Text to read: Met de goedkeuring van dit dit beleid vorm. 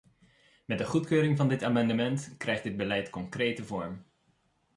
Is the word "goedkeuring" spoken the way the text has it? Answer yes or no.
yes